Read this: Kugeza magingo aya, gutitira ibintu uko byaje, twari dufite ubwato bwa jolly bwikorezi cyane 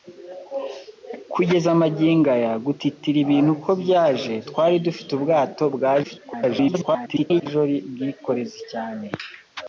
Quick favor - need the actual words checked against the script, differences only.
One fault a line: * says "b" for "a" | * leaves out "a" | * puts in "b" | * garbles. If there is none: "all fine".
* garbles